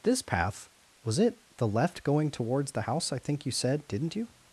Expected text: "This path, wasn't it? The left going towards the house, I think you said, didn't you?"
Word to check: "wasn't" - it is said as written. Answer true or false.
false